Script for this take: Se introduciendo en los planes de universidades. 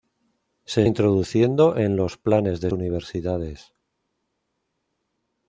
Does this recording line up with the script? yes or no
yes